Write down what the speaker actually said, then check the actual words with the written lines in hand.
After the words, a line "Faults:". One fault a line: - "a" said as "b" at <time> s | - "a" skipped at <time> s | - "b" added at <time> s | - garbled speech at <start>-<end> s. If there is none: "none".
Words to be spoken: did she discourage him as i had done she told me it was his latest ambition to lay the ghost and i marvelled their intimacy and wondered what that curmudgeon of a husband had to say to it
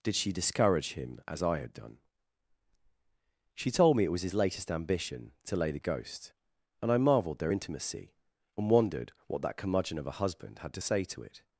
did she discourage him as i had done she told me it was his latest ambition to lay the ghost and i marvelled their intimacy and wondered what that curmudgeon of a husband had to say to it
Faults:
none